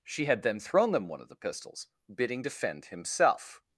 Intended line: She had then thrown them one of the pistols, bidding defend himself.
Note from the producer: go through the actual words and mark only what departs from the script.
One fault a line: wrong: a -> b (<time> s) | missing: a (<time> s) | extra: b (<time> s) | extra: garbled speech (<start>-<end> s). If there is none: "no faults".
no faults